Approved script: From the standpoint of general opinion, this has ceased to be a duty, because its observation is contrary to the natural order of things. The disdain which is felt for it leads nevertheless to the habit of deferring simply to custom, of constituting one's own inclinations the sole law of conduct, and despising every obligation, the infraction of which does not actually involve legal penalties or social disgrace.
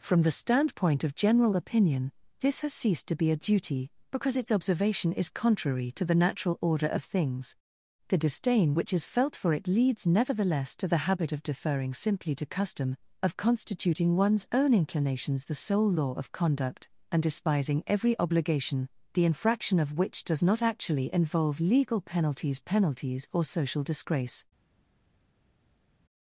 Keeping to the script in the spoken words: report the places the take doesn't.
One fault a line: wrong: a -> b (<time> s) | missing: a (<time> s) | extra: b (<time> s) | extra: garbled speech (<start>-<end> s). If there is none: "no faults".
extra: penalties (22.6 s)